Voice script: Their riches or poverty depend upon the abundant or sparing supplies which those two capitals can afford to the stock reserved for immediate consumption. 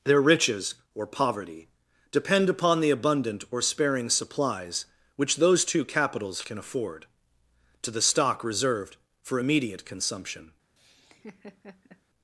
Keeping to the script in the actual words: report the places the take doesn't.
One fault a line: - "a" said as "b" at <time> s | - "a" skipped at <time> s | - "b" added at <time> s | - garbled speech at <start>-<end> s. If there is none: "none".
none